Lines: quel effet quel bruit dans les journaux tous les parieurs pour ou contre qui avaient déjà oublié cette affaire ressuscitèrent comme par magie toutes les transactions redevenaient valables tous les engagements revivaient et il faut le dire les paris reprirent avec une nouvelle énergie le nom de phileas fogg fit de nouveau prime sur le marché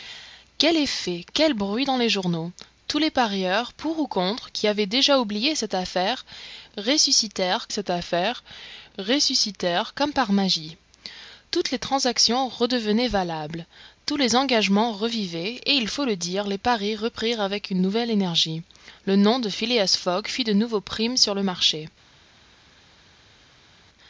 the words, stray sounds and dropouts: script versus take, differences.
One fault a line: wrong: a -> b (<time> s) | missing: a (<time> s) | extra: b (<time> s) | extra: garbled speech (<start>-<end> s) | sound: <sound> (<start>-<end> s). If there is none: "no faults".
extra: cette affaire ressuscitèrent (7.7 s)